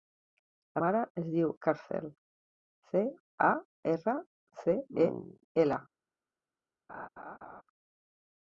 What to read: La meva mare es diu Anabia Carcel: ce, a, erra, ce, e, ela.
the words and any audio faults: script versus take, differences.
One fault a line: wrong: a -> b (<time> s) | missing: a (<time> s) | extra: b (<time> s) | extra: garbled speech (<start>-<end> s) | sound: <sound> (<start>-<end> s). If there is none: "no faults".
missing: meva (0.8 s)
missing: Anabia (1.5 s)
sound: laugh (6.9-7.6 s)